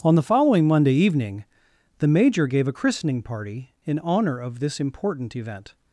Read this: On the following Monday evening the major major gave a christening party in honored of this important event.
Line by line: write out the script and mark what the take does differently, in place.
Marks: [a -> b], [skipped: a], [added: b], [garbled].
On the following Monday evening the major [skipped: major] gave a christening party in [honored -> honor] of this important event.